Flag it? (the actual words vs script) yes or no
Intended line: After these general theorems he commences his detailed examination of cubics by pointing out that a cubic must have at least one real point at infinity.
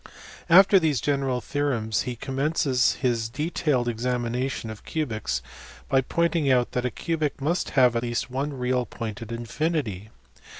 yes